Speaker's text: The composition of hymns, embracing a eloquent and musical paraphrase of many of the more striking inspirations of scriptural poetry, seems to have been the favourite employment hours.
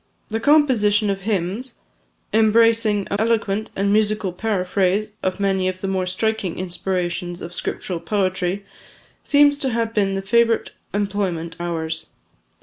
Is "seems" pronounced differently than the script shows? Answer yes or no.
no